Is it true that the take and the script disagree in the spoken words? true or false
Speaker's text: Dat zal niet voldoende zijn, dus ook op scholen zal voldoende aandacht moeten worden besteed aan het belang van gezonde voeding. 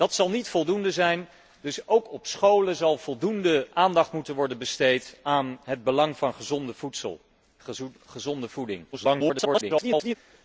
true